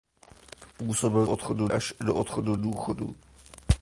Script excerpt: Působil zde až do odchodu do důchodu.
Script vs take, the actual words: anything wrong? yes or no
yes